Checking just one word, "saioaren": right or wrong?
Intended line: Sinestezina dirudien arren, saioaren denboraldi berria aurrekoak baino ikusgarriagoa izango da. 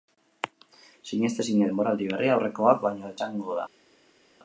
wrong